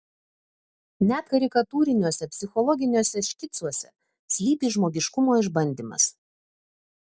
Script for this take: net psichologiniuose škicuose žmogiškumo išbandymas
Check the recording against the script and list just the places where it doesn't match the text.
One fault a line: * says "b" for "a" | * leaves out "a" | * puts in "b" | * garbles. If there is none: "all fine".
* puts in "karikatūriniuose"
* puts in "slypi"